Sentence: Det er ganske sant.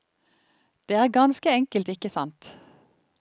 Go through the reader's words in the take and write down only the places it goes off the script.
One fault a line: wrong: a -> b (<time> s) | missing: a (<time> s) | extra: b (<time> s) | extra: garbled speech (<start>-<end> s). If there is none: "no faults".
extra: enkelt ikke (1.6 s)